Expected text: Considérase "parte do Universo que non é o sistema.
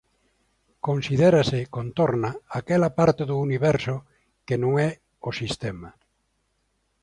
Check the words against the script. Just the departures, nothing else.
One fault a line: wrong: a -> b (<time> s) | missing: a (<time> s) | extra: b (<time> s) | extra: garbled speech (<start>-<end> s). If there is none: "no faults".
extra: contorna aquela (1.8 s)